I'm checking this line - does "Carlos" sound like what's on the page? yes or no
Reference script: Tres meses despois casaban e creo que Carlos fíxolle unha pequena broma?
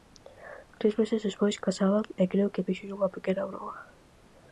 no